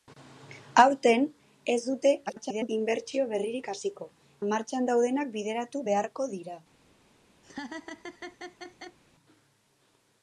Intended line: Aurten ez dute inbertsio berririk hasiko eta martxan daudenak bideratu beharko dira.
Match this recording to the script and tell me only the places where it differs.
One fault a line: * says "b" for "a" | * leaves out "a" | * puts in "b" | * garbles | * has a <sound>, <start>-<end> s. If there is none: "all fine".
* garbles
* leaves out "eta"
* has a laugh, 7.4-9.0 s